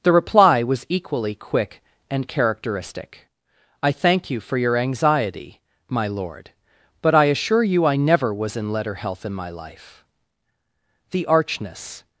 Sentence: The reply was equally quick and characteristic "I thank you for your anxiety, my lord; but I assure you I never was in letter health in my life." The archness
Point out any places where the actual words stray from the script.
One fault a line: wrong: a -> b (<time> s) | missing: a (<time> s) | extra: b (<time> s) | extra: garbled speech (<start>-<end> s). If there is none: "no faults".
no faults